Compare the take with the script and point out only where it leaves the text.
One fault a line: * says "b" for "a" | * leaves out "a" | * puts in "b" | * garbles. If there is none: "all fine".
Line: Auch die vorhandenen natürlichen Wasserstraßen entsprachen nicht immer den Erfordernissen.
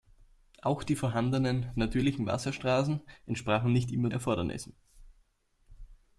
* leaves out "den"